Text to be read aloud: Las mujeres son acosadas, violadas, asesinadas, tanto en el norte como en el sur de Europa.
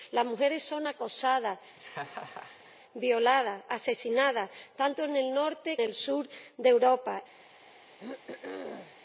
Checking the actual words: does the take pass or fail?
fail